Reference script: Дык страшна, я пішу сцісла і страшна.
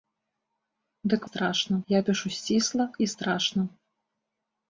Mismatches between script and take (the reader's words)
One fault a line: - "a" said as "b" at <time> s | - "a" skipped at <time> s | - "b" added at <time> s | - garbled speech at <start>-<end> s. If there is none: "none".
none